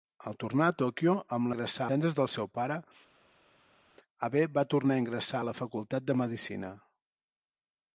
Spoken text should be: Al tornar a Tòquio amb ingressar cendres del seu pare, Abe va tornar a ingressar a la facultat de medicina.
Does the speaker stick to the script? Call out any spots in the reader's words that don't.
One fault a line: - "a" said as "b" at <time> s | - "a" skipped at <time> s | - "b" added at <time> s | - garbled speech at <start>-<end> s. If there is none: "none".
none